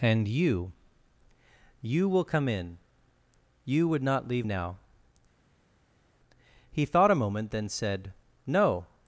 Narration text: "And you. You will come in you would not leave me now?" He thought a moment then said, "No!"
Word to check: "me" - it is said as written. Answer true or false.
false